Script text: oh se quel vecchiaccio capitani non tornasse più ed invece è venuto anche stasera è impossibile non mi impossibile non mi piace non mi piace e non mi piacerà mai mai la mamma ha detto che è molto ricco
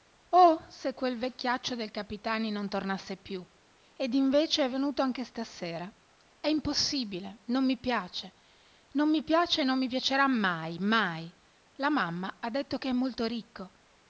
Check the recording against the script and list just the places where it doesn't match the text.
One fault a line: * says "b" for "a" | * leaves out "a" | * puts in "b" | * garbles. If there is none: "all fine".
* puts in "del"
* leaves out "impossibile non mi"